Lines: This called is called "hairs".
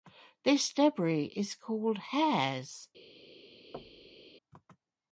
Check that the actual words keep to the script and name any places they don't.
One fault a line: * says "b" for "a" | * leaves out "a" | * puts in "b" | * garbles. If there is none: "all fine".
* says "debris" for "called"